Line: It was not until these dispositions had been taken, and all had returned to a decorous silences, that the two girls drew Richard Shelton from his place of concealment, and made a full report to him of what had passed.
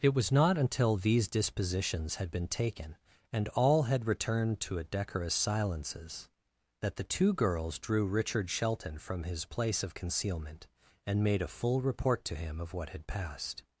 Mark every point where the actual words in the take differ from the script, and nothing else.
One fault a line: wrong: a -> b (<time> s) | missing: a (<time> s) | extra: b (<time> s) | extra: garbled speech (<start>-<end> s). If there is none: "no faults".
no faults